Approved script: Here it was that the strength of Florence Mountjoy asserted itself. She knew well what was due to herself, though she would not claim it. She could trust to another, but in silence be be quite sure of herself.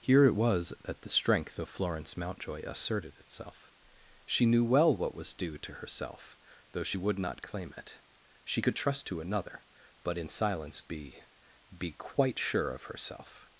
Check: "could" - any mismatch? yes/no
no